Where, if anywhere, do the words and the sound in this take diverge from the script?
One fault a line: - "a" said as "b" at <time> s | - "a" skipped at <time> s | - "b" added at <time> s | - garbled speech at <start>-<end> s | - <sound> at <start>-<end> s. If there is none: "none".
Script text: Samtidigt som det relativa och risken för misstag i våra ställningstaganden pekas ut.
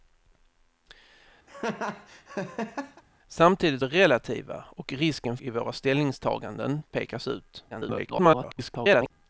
- laugh at 1.5-3.0 s
- "som" skipped at 3.8 s
- "för misstag" skipped at 5.4 s
- garbled speech at 7.7-9.1 s